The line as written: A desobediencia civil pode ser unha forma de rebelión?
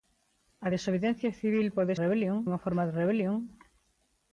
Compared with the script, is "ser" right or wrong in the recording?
wrong